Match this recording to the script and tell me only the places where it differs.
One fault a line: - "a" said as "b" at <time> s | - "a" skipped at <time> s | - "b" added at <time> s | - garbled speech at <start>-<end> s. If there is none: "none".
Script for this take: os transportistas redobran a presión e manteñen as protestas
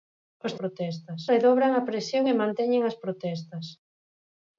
- "transportistas" said as "protestas" at 0.6 s